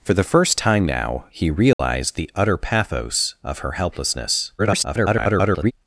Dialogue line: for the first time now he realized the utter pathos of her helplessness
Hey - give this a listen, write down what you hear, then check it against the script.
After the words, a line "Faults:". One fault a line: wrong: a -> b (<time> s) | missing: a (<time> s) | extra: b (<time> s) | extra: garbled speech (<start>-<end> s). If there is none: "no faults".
for the first time now he realized the utter pathos of her helplessness [garbled]
Faults:
extra: garbled speech (4.6-5.7 s)